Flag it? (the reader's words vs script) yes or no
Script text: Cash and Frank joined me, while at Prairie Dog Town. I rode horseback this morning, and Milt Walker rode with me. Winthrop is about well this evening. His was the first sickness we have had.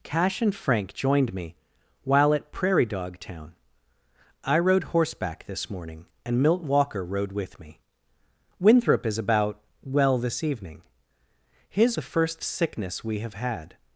yes